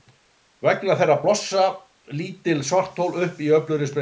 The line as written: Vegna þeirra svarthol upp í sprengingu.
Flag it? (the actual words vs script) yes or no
yes